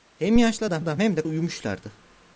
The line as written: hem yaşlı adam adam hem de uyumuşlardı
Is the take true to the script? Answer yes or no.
yes